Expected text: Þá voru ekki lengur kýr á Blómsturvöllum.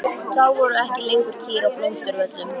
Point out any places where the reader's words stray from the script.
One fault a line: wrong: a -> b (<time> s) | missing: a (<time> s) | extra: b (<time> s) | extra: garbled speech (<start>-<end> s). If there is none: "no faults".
no faults